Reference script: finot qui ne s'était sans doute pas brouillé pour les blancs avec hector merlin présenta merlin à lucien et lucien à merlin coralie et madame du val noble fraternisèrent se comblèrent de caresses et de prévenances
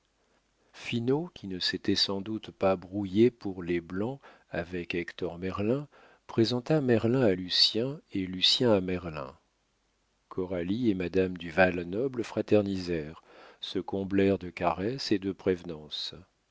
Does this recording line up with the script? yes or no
yes